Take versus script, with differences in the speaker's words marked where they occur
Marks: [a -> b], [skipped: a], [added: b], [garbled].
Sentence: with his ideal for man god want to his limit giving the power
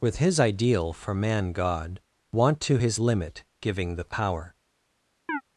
with his ideal for man god want to his limit giving the power